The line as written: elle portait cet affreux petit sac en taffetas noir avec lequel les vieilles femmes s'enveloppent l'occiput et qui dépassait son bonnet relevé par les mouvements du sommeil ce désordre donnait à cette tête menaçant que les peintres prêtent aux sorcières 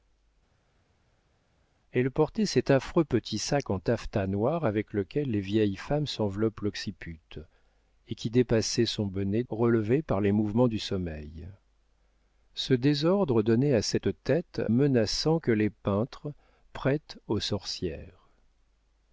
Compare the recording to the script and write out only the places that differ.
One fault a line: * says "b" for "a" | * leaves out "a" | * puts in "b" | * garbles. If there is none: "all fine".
all fine